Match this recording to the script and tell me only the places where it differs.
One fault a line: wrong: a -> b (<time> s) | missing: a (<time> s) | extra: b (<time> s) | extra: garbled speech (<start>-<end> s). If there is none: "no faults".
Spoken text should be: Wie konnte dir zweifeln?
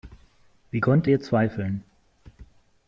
no faults